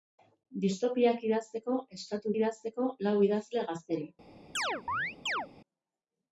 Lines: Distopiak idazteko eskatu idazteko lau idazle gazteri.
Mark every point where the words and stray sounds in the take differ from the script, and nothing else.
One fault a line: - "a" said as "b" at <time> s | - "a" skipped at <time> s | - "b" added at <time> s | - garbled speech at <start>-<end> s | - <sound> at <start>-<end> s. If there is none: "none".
- chirp at 4.5-5.5 s